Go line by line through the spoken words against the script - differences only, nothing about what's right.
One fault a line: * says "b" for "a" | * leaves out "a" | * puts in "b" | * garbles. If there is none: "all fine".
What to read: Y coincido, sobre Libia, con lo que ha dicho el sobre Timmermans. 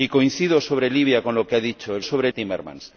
all fine